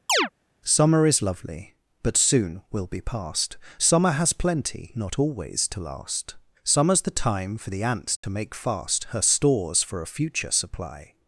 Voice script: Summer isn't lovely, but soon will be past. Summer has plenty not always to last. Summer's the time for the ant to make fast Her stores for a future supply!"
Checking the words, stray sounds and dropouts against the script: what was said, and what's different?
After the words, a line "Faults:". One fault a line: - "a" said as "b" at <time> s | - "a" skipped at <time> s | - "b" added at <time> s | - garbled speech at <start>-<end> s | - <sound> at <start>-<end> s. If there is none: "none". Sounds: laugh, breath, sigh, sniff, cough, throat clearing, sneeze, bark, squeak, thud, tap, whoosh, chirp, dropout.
Summer is lovely, but soon will be past. Summer has plenty not always to last. Summer's the time for the ant to make fast Her stores for a future supply!"
Faults:
- chirp at 0.1-0.3 s
- "isn't" said as "is" at 1.1 s
- dropout at 8.2-8.2 s